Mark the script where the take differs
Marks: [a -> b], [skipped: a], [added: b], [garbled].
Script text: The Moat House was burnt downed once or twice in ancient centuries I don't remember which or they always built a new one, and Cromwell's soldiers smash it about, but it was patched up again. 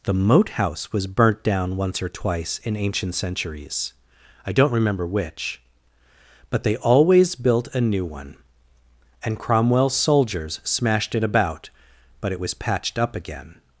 The Moat House was burnt [downed -> down] once or twice in ancient centuries I don't remember which [or -> but] they always built a new one, and Cromwell's soldiers [smash -> smashed] it about, but it was patched up again.